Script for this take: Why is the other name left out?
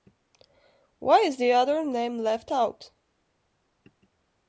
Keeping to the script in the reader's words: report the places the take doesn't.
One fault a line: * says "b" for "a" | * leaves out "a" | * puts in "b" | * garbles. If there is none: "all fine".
all fine